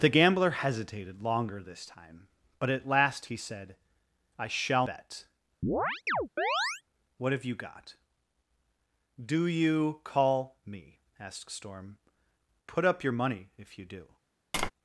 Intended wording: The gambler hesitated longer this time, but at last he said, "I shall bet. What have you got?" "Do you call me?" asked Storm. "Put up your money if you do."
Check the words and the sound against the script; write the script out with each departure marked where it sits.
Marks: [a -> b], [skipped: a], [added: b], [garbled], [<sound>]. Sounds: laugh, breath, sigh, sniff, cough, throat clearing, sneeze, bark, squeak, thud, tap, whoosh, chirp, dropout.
The gambler hesitated longer this time, but at last he said, "I shall bet. [chirp] What have you got?" "Do you call me?" asked Storm. "Put up your money if you do." [tap]